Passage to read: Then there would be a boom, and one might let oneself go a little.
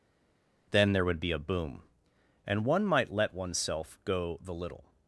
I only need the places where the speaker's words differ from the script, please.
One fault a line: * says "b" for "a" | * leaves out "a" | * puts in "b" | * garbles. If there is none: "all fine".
* says "the" for "a"